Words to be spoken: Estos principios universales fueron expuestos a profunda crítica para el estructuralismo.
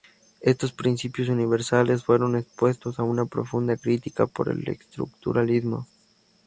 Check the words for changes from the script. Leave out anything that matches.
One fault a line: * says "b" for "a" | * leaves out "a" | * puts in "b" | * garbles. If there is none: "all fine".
* puts in "una"
* says "por" for "para"